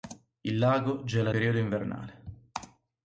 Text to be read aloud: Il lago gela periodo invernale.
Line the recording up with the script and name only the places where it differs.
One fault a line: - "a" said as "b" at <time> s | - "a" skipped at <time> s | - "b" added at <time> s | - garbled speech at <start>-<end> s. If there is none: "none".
none